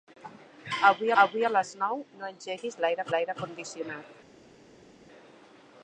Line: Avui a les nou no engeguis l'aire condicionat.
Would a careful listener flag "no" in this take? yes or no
no